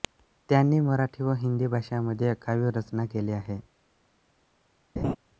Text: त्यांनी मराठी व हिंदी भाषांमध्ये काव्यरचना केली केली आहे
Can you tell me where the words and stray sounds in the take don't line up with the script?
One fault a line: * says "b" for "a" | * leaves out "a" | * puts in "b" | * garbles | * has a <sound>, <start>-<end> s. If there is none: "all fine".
* leaves out "केली"
* has a laugh, 5.0-5.2 s